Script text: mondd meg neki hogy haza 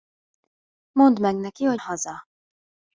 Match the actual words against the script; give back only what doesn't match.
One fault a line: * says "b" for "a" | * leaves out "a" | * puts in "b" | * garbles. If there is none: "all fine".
all fine